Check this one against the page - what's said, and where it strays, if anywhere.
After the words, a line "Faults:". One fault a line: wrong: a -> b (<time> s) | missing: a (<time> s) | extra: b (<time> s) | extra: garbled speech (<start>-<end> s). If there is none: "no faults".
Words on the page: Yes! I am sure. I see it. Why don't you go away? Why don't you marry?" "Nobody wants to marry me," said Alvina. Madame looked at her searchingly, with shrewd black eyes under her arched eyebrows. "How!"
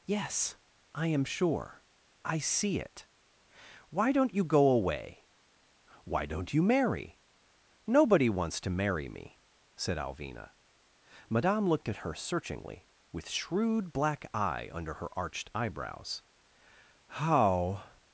Yes! I am sure. I see it. Why don't you go away? Why don't you marry?" "Nobody wants to marry me," said Alvina. Madame looked at her searchingly, with shrewd black eye under her arched eyebrows. "How!"
Faults:
wrong: eyes -> eye (14.3 s)